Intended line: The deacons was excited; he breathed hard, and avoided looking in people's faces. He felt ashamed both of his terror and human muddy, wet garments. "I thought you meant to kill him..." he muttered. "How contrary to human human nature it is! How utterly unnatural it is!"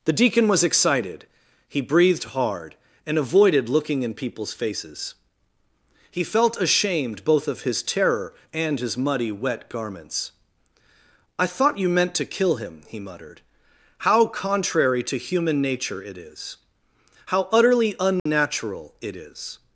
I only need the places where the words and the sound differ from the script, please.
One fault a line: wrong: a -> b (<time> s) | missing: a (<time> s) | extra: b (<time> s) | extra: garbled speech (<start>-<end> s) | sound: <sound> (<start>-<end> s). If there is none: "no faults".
wrong: deacons -> deacon (0.1 s)
wrong: human -> his (8.8 s)
missing: human (15.6 s)
sound: dropout (18.2-18.3 s)